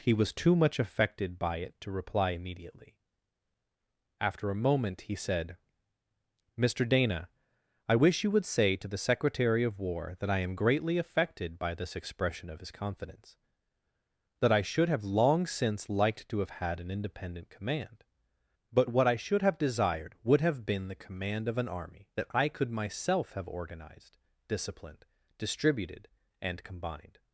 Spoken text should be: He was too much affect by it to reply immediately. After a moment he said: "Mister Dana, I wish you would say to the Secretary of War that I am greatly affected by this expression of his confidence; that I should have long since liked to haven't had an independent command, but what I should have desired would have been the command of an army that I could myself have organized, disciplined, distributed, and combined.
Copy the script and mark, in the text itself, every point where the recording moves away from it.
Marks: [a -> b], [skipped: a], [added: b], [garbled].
He was too much [affect -> affected] by it to reply immediately. After a moment he said: "Mister Dana, I wish you would say to the Secretary of War that I am greatly affected by this expression of his confidence; that I should have long since liked to [haven't -> have] had an independent command, but what I should have desired would have been the command of an army that I could myself have organized, disciplined, distributed, and combined.